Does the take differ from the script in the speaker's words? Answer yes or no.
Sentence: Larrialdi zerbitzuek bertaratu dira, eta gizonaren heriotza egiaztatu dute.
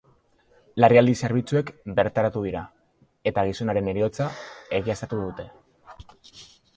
no